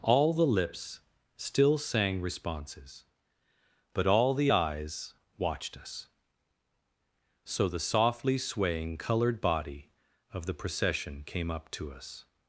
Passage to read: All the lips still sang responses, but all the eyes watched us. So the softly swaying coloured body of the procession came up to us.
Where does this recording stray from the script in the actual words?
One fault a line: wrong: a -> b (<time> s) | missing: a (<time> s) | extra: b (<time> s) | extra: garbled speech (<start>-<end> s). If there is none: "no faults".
no faults